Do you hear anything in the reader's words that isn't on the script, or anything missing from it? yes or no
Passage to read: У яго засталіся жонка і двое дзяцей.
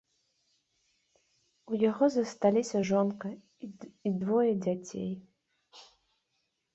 no